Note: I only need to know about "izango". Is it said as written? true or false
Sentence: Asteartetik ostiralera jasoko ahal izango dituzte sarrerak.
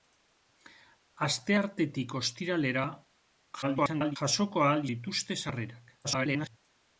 false